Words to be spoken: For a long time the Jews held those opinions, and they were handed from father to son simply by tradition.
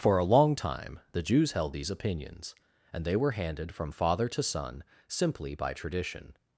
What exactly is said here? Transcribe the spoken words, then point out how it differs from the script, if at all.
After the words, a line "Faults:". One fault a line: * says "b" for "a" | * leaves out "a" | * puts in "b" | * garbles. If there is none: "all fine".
For a long time the Jews held these opinions, and they were handed from father to son simply by tradition.
Faults:
* says "these" for "those"